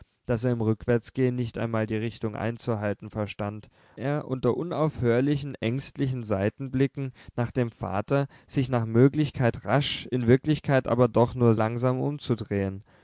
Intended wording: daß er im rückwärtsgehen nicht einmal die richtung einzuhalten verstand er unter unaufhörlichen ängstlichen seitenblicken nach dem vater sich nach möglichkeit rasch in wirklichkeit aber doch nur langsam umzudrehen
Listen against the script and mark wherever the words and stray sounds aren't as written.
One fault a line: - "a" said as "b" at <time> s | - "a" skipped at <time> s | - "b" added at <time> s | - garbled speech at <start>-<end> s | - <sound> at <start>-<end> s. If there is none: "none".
none